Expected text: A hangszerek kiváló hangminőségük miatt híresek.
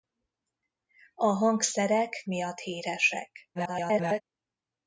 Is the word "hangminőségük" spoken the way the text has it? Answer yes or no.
no